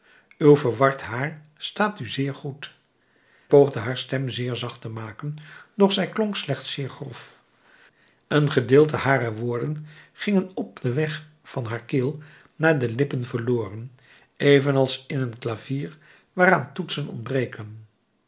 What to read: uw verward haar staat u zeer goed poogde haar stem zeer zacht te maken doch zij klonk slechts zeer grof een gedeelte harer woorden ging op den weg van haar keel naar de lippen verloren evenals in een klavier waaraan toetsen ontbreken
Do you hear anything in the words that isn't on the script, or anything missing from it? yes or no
no